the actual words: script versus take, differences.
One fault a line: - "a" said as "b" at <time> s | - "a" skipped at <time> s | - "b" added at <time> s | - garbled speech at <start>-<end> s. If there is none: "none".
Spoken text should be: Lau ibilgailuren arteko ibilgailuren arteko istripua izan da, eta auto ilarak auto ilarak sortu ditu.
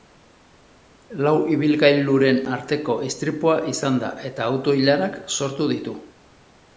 - "ibilgailuren arteko" skipped at 3.0 s
- "auto ilarak" skipped at 5.2 s